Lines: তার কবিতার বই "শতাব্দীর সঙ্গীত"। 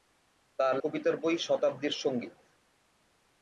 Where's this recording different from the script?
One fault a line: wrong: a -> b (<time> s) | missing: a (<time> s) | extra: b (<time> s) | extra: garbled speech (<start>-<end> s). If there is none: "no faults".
no faults